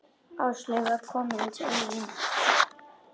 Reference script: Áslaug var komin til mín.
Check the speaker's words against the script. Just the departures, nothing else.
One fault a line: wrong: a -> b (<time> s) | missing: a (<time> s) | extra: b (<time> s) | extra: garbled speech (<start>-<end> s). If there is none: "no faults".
no faults